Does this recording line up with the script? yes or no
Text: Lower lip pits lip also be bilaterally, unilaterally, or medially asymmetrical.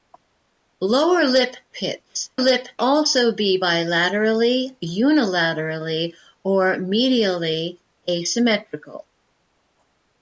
yes